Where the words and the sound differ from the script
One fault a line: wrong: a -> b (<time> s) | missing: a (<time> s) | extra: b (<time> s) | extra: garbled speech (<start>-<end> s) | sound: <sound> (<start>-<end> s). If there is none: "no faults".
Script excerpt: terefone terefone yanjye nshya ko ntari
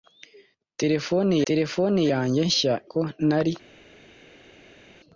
no faults